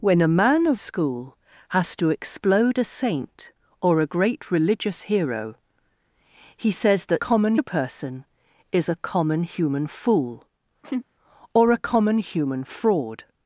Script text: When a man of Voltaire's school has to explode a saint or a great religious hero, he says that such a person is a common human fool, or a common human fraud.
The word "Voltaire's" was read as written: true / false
false